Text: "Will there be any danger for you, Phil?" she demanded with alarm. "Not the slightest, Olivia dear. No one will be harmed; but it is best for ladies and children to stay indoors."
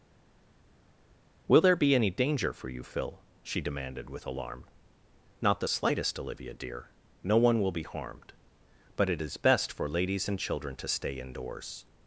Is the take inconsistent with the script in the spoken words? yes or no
no